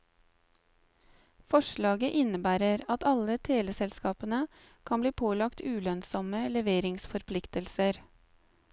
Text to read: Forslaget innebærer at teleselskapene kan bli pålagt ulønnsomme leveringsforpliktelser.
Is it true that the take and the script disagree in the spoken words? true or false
true